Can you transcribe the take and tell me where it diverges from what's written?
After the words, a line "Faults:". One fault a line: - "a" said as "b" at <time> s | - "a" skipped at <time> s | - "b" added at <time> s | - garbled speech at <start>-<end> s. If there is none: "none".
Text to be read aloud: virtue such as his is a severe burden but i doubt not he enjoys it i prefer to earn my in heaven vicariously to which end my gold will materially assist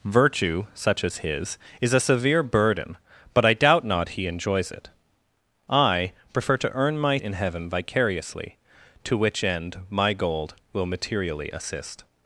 virtue such as his is a severe burden but i doubt not he enjoys it i prefer to earn my in heaven vicariously to which end my gold will materially assist
Faults:
none